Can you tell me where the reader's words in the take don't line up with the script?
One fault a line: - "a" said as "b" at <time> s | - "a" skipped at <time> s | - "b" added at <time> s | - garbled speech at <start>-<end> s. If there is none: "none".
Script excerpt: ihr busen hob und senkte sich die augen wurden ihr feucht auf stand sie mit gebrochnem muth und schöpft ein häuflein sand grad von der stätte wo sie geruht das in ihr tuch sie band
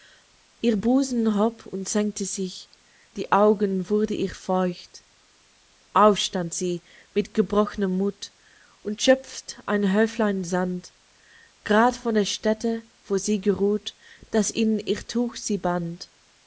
none